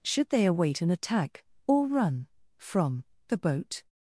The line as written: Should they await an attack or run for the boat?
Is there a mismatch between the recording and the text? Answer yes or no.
yes